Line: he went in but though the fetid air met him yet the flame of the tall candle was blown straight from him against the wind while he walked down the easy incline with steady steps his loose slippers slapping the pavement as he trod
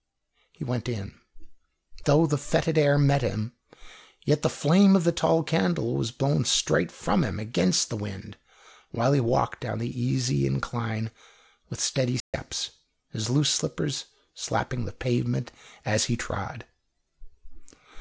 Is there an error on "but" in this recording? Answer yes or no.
yes